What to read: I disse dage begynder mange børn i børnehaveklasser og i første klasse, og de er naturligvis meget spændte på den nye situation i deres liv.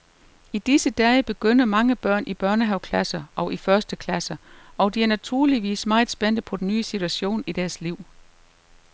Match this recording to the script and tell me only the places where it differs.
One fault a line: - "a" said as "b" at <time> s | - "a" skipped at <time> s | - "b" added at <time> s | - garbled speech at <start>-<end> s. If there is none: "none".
none